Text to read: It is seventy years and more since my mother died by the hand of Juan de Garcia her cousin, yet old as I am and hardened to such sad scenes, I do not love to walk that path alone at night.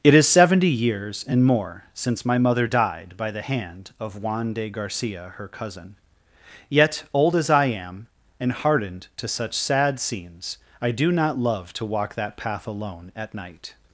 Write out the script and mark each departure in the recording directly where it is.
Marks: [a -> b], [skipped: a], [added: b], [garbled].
It is seventy years and more since my mother died by the hand of Juan de Garcia her cousin, yet old as I am and hardened to such sad scenes, I do not love to walk that path alone at night.